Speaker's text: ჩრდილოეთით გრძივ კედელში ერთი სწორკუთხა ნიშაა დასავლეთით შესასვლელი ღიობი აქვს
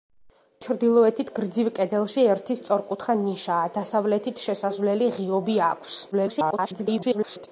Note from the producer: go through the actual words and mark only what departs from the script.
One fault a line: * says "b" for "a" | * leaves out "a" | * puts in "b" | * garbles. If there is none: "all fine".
* garbles